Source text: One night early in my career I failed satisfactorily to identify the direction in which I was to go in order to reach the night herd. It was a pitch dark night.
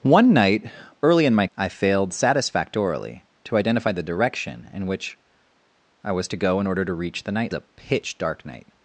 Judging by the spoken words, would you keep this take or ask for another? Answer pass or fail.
fail